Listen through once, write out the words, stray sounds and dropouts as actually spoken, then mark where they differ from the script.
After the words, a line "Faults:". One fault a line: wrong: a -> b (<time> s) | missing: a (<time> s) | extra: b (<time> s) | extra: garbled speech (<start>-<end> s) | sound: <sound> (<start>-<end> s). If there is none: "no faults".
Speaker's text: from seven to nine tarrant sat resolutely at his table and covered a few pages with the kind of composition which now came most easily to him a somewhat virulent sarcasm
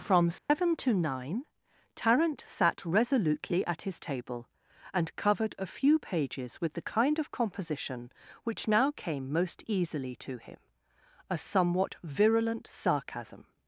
from seven to nine tarrant sat resolutely at his table and covered a few pages with the kind of composition which now came most easily to him a somewhat virulent sarcasm
Faults:
sound: dropout (0.4-0.5 s)